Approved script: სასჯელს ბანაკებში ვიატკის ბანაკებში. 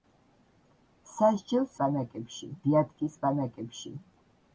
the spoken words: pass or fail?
pass